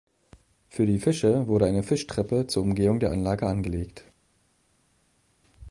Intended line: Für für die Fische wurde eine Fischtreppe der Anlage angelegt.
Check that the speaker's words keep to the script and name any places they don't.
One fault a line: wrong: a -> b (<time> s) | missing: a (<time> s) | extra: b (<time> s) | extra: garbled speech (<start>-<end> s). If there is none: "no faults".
missing: für (0.9 s)
extra: zur Umgehung (2.5 s)